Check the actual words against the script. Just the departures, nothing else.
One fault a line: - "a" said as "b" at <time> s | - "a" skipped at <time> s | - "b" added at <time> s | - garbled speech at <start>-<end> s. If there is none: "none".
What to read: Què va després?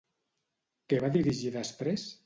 - "dirigir" added at 1.2 s